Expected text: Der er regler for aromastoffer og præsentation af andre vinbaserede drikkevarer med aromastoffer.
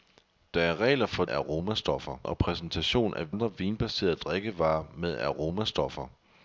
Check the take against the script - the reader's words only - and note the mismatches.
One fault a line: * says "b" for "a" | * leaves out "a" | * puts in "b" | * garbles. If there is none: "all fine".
all fine